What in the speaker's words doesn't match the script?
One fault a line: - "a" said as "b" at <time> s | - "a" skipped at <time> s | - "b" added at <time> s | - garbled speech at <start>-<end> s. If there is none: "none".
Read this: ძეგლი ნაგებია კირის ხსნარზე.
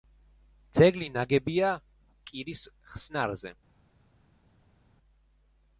none